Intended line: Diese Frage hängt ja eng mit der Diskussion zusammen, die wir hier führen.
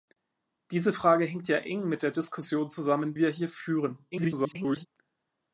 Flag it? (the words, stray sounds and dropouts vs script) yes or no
yes